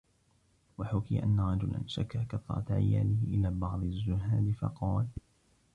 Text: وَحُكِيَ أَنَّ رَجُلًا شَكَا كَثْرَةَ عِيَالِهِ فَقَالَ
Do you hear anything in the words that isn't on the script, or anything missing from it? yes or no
yes